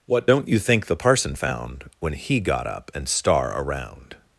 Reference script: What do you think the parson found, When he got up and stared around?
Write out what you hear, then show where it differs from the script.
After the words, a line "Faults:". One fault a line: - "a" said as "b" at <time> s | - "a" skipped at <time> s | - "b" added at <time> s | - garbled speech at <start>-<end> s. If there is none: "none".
What don't you think the parson found, When he got up and star around?
Faults:
- "do" said as "don't" at 0.2 s
- "stared" said as "star" at 3.1 s